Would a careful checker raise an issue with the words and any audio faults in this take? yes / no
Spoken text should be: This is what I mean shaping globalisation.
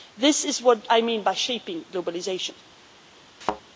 yes